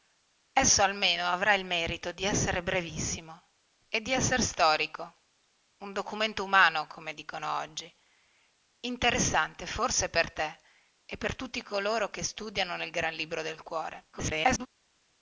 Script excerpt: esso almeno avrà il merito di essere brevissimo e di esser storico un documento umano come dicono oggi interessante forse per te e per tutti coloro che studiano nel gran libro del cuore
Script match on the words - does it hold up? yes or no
no